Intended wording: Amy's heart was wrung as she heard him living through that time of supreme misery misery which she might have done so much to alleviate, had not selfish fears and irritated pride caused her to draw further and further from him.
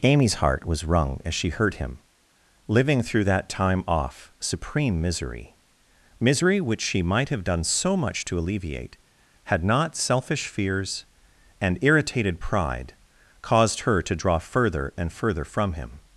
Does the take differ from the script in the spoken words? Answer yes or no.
yes